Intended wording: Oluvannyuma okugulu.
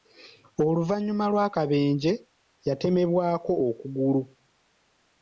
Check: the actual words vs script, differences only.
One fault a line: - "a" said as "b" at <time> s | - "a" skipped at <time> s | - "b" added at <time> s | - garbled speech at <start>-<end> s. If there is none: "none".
- "lw'akabenje yatemebwako" added at 1.3 s